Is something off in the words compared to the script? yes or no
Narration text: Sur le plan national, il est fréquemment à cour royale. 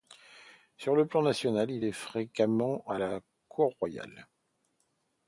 yes